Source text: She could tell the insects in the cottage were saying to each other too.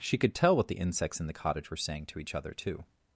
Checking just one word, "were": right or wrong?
right